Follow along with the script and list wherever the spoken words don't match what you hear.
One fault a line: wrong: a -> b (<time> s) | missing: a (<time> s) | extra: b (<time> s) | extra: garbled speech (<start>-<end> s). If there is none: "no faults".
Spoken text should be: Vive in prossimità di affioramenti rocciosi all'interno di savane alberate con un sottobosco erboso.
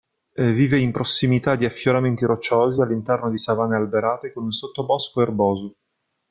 no faults